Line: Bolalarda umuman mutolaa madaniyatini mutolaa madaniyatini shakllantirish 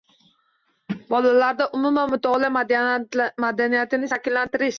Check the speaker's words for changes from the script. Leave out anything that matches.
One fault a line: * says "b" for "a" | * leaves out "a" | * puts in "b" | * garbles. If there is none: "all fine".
* leaves out "mutolaa madaniyatini"